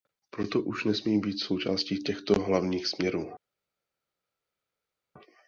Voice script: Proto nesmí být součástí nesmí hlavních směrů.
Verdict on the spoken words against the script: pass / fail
fail